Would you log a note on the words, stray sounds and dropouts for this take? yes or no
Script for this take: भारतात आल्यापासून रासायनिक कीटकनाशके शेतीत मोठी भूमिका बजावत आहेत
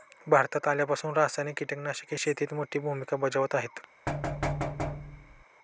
yes